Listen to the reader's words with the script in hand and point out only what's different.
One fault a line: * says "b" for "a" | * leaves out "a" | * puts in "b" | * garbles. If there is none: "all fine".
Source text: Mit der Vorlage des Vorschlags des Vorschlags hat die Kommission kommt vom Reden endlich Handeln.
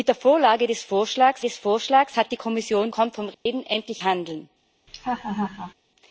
all fine